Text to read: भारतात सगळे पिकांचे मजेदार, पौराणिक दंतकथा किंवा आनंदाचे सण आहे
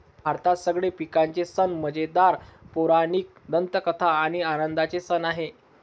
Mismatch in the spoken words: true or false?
true